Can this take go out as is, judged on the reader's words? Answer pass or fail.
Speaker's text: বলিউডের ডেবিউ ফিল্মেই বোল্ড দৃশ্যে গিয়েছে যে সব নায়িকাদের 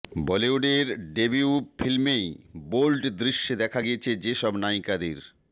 fail